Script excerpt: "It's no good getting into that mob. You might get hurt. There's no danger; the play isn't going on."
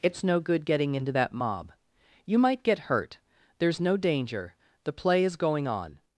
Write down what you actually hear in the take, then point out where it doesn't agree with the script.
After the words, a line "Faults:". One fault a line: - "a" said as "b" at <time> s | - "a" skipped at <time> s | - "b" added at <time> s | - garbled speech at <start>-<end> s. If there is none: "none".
"It's no good getting into that mob. You might get hurt. There's no danger; the play is going on."
Faults:
- "isn't" said as "is" at 5.2 s